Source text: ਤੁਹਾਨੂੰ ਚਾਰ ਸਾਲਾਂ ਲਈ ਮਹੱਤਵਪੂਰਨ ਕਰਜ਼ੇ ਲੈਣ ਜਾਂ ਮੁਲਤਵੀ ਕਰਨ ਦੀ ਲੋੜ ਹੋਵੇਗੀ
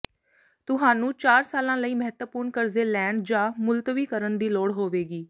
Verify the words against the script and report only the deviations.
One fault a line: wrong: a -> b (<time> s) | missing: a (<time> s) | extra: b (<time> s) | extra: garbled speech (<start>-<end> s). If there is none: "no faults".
no faults